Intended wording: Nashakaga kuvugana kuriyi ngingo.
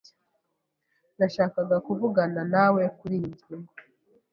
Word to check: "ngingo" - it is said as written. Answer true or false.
true